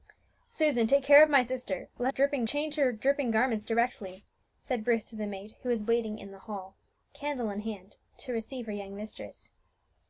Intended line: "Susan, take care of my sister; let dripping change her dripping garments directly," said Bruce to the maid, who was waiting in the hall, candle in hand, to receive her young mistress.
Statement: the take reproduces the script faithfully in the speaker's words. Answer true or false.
true